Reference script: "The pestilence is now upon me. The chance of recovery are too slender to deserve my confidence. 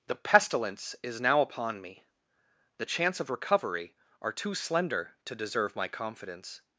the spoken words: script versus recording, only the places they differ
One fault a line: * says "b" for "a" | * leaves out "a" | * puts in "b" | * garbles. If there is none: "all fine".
all fine